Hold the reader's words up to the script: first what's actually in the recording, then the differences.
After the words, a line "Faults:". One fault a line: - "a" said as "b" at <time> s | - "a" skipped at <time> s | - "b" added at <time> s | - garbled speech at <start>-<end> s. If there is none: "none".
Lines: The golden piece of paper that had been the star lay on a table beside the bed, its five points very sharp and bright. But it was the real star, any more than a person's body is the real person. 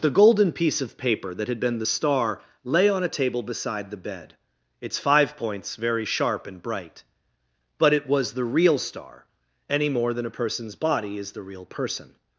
The golden piece of paper that had been the star lay on a table beside the bed, its five points very sharp and bright. But it was the real star, any more than a person's body is the real person.
Faults:
none